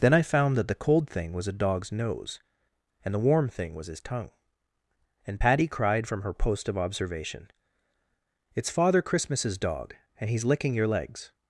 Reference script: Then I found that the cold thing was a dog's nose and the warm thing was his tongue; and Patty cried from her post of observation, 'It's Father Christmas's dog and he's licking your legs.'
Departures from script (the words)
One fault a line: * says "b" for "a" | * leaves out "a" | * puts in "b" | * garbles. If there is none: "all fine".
all fine